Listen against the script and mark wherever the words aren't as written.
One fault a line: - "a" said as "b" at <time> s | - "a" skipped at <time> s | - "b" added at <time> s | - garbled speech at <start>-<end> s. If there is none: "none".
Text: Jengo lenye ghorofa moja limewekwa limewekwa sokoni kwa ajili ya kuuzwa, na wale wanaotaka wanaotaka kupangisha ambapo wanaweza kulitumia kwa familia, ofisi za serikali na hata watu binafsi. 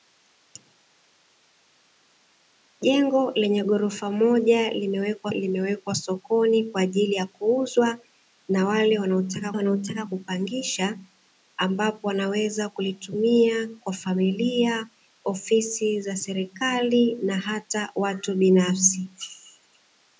none